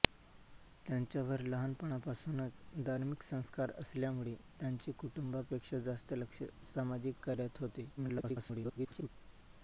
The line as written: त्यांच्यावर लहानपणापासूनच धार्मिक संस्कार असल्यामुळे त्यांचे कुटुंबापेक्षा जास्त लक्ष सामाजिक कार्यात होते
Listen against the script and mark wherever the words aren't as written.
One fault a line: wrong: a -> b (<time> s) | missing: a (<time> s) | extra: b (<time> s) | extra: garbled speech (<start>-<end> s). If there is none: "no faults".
extra: garbled speech (8.0-9.1 s)